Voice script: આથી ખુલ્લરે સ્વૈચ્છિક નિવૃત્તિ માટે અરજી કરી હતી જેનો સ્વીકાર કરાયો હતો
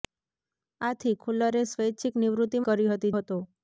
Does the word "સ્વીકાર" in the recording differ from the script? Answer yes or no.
yes